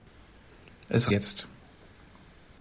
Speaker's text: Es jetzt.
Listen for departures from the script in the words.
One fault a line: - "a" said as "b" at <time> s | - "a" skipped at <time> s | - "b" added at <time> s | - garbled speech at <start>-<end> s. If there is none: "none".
none